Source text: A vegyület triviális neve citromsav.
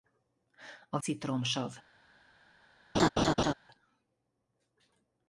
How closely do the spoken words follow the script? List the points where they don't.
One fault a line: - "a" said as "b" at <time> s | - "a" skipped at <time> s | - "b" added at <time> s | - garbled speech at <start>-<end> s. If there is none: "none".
- "vegyület triviális neve" skipped at 1.0 s